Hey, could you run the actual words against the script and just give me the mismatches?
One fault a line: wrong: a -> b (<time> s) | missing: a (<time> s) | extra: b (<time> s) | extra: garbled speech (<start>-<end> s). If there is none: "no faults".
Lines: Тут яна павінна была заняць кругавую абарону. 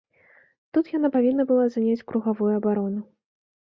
no faults